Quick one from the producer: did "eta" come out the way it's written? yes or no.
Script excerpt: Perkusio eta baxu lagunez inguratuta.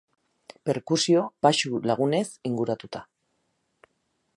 no